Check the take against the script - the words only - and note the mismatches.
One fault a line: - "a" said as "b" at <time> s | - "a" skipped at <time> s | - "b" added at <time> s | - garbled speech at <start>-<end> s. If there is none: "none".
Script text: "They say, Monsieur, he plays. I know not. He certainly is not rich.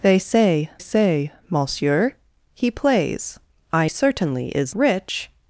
- "say" added at 0.8 s
- "know not He" skipped at 3.9 s
- "not" skipped at 4.7 s